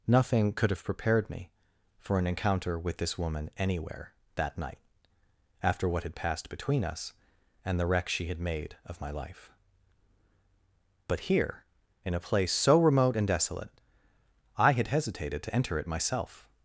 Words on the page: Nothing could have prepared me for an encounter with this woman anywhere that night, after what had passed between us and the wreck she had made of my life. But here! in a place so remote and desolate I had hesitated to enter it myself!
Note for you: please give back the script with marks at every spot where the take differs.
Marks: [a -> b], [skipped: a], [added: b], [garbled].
Nothing could have prepared me for an encounter with this woman anywhere that night, after what had passed between us and the wreck she had made of my life. But here! in a place so remote and desolate I had hesitated to enter it myself!